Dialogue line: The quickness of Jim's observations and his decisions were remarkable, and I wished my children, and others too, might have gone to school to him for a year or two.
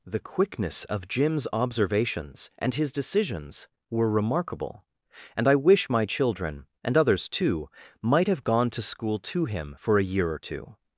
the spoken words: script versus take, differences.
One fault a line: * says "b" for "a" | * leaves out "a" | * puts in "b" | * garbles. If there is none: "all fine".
* says "wish" for "wished"